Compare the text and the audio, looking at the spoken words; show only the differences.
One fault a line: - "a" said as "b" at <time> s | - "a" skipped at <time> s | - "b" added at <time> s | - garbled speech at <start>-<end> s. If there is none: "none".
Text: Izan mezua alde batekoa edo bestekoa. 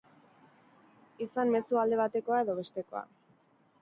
none